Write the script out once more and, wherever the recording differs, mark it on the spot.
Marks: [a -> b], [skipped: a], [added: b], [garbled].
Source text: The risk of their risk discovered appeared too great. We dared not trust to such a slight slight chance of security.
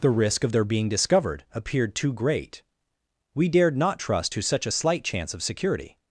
The risk of their [risk -> being] discovered appeared too great. We dared not trust to such a slight [skipped: slight] chance of security.